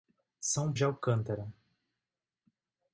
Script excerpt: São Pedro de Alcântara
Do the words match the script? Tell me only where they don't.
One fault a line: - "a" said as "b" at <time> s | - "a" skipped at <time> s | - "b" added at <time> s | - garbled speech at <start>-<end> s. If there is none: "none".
- "Pedro" skipped at 0.7 s